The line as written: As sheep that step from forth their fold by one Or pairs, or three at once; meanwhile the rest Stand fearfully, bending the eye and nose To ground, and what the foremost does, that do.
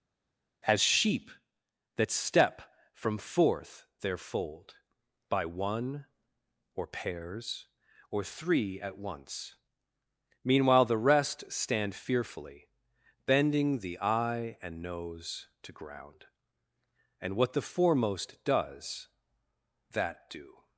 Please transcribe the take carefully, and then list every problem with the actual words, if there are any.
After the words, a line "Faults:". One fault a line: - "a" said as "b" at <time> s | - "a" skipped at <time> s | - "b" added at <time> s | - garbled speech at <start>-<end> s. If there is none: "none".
As sheep that step from forth their fold by one Or pairs, or three at once; meanwhile the rest Stand fearfully, bending the eye and nose To ground, and what the foremost does, that do.
Faults:
none